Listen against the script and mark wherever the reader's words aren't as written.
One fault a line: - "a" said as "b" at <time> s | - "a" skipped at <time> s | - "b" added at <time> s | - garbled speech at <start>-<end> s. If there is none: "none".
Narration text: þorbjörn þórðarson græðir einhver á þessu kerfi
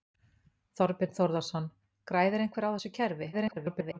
- garbled speech at 3.3-4.0 s